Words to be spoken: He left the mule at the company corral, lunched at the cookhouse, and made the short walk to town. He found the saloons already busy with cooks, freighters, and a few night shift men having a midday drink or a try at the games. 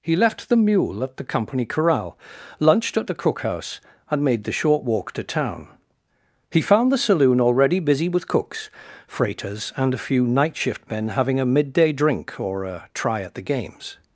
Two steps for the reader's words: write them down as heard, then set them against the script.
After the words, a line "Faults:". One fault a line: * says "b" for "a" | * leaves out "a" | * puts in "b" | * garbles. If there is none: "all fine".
He left the mule at the company corral, lunched at the cookhouse, and made the short walk to town. He found the saloon already busy with cooks, freighters, and a few night shift men having a midday drink or a try at the games.
Faults:
* says "saloon" for "saloons"